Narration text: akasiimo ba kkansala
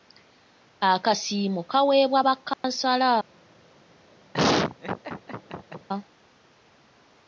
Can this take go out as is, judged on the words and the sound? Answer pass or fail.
fail